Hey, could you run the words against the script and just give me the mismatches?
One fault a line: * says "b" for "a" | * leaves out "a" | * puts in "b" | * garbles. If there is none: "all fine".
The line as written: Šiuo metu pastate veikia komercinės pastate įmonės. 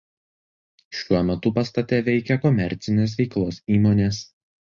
* says "veiklos" for "pastate"